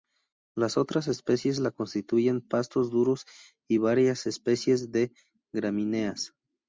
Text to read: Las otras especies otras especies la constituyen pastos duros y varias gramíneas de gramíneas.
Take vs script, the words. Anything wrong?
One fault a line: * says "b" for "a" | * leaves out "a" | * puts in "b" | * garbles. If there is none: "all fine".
* leaves out "otras especies"
* says "especies" for "gramíneas"